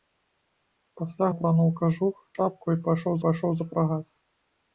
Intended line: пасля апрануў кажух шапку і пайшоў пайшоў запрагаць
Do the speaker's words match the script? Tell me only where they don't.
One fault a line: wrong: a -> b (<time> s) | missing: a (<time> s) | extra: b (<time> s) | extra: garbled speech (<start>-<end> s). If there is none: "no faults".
no faults